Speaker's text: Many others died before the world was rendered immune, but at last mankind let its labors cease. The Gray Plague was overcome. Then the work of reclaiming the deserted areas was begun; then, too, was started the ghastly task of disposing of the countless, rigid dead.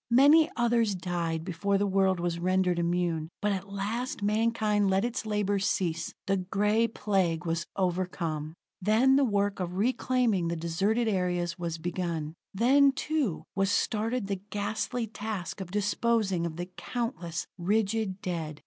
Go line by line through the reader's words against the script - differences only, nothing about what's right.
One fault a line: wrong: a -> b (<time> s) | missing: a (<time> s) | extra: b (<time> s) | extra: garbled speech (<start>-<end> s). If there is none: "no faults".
no faults